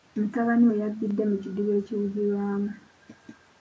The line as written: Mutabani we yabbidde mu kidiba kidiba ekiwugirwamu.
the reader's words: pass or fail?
fail